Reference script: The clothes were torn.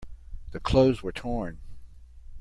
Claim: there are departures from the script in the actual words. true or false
false